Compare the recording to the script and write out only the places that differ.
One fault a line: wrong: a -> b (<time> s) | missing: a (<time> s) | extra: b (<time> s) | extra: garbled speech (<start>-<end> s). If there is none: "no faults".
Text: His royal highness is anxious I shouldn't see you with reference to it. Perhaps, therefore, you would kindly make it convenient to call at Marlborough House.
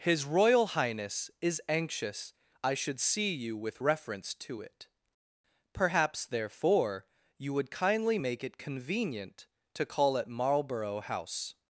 wrong: shouldn't -> should (2.7 s)